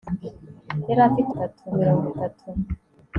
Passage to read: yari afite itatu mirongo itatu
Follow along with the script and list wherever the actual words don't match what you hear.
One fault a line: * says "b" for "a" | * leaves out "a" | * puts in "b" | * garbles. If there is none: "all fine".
all fine